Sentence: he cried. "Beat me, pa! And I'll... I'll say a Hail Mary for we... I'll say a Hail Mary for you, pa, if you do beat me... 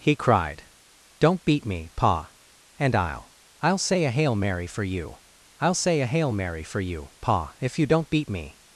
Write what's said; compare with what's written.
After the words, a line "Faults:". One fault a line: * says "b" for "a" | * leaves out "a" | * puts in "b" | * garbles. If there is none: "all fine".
he cried. "Don't beat me, pa! And I'll... I'll say a Hail Mary for you... I'll say a Hail Mary for you, pa, if you don't beat me...
Faults:
* puts in "Don't"
* says "you" for "we"
* says "don't" for "do"